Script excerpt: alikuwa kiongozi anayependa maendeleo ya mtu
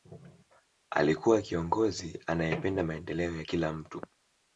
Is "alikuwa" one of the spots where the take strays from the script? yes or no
no